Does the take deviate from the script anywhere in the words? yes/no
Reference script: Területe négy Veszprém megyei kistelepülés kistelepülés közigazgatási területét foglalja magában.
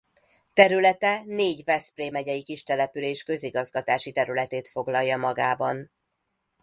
yes